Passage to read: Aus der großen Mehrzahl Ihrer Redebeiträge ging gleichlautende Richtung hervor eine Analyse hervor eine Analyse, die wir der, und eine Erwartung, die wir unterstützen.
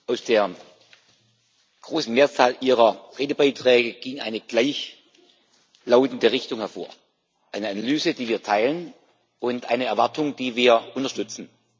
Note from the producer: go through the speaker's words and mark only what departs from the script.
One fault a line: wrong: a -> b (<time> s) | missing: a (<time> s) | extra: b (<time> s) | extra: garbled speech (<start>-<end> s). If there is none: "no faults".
extra: eine (4.2 s)
missing: hervor eine Analyse (8.1 s)
wrong: der -> teilen (8.4 s)